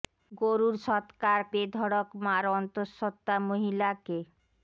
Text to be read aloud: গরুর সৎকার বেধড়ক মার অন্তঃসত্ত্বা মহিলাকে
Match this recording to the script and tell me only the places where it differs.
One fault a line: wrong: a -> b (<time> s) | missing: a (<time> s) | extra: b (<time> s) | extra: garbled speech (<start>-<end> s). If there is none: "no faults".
no faults